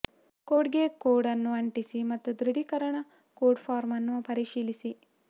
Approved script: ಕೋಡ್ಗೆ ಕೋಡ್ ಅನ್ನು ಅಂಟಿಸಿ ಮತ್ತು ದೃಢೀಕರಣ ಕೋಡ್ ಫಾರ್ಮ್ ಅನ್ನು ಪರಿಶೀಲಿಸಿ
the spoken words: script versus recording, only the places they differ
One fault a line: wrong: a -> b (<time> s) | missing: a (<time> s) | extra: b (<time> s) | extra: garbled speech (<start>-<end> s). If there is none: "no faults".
no faults